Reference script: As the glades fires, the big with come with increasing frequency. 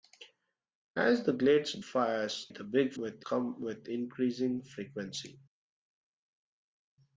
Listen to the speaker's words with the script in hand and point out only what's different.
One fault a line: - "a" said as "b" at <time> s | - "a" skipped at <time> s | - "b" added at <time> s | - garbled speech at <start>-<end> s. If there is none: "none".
none